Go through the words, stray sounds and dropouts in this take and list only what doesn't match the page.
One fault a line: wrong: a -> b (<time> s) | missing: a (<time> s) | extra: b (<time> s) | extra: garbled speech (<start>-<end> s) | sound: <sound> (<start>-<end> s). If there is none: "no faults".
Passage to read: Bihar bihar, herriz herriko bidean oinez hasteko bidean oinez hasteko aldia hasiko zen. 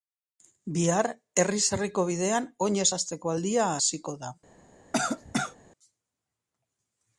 missing: bihar (1.1 s)
missing: bidean oinez hasteko (3.3 s)
wrong: zen -> da (4.2 s)
sound: cough (4.9-5.6 s)